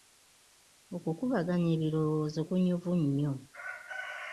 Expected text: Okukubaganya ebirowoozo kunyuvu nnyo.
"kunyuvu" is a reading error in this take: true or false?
false